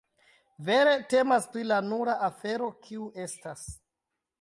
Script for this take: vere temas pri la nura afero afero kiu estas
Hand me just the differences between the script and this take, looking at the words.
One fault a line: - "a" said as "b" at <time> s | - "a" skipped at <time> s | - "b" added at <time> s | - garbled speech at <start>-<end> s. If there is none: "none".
- "afero" skipped at 2.7 s